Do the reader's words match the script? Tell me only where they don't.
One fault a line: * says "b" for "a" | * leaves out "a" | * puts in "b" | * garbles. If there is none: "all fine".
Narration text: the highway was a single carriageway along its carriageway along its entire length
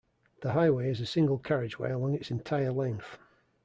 * says "is" for "was"
* leaves out "carriageway along its"